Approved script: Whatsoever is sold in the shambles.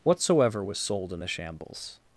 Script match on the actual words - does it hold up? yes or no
no